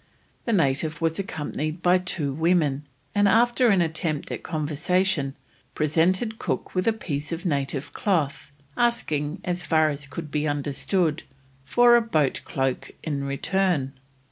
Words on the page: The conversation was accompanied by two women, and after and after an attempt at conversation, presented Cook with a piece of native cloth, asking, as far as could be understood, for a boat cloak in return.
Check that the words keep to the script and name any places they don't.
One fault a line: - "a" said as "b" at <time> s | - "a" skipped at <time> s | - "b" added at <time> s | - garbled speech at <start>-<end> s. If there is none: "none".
- "conversation" said as "native" at 0.5 s
- "and after" skipped at 3.7 s